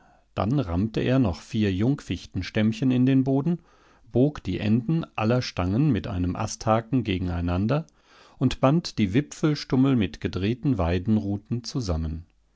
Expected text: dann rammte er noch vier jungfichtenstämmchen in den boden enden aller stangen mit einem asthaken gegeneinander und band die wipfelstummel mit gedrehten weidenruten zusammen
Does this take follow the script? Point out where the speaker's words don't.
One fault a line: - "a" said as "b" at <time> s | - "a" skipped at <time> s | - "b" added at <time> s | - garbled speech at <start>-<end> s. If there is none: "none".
- "bog die" added at 4.1 s